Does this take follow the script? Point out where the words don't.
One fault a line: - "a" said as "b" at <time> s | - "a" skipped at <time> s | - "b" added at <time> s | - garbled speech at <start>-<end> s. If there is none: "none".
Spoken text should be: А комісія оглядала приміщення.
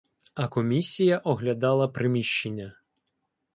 none